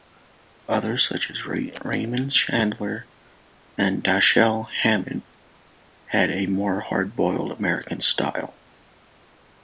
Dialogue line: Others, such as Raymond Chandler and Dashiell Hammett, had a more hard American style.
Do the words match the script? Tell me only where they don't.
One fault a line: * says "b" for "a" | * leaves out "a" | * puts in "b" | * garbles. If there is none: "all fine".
* puts in "boiled"